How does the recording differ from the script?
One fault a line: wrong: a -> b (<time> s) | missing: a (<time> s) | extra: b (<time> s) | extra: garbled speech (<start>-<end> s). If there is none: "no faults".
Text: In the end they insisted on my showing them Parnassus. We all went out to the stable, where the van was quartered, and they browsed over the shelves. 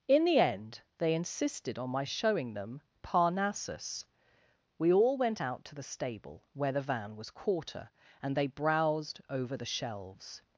wrong: quartered -> quarter (7.3 s)